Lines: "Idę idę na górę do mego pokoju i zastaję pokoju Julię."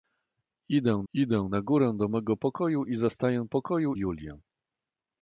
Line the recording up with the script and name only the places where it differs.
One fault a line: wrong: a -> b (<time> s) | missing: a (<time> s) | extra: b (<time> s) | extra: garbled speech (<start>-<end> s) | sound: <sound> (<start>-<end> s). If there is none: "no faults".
no faults